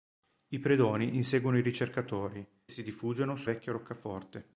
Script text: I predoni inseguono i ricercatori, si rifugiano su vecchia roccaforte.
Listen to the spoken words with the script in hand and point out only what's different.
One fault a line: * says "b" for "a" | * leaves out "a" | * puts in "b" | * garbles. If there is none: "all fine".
all fine